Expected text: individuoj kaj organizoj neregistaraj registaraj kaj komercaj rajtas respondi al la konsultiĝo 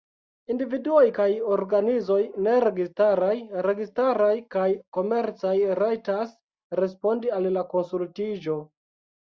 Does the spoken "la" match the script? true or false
true